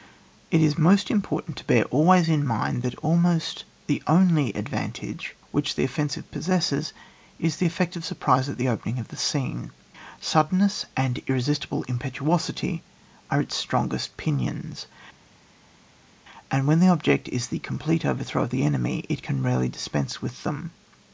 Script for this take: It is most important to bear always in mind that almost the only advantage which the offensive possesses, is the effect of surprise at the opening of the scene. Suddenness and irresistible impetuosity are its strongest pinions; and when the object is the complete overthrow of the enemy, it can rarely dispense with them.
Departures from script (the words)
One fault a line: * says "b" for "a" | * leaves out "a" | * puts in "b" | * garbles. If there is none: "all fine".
all fine